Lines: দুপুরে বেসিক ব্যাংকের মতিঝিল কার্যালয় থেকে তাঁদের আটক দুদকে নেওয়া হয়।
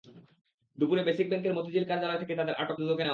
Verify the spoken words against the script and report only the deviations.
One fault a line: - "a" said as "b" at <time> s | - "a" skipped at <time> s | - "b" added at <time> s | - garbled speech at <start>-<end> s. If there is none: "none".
none